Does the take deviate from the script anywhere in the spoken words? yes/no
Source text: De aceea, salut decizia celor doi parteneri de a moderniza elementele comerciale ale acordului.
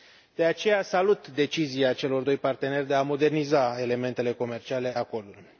yes